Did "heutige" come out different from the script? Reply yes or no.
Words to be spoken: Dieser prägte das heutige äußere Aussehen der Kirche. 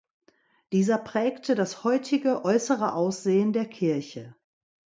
no